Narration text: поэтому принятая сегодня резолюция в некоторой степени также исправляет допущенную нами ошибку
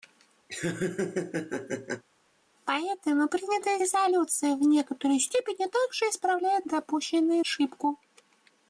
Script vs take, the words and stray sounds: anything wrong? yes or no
yes